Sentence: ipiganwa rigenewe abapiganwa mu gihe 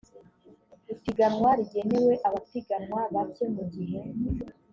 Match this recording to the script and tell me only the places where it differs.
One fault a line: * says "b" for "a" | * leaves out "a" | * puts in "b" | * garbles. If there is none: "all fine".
* puts in "bake"